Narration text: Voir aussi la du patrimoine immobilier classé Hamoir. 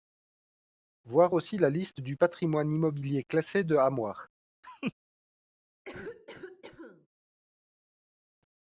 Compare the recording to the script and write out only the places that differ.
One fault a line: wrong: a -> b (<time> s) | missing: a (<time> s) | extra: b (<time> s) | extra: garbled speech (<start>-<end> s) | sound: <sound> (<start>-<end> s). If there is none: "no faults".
extra: liste (1.7 s)
extra: de (3.6 s)
sound: laugh (4.6-4.9 s)
sound: cough (5.9-7.1 s)